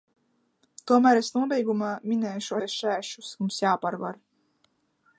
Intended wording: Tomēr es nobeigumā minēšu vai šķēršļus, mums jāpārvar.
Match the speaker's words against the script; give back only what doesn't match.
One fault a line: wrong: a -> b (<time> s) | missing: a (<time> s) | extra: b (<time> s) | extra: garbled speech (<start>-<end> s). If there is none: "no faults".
no faults